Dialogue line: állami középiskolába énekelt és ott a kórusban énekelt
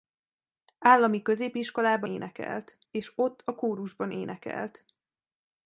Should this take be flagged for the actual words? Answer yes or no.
no